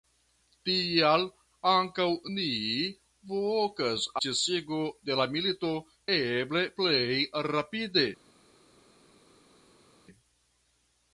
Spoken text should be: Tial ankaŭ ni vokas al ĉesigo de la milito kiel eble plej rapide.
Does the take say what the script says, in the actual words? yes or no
no